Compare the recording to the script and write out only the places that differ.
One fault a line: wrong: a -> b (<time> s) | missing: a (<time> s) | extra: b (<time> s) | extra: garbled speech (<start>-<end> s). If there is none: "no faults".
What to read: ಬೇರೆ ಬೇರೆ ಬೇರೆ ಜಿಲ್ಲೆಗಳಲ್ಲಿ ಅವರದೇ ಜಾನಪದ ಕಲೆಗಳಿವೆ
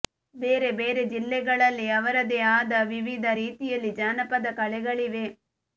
missing: ಬೇರೆ (1.0 s)
extra: ಆದ ವಿವಿಧ ರೀತಿಯಲ್ಲಿ (2.5 s)